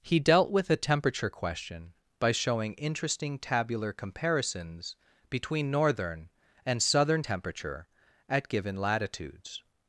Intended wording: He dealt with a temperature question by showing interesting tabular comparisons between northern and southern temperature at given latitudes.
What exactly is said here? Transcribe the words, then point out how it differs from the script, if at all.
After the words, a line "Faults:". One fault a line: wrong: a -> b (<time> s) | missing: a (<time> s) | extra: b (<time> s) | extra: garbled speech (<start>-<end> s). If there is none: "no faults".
He dealt with a temperature question by showing interesting tabular comparisons between northern and southern temperature at given latitudes.
Faults:
no faults